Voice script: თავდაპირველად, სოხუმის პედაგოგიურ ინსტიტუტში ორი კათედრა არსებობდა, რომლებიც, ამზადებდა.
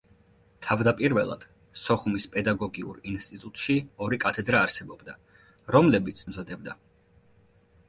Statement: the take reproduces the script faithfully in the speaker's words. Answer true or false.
true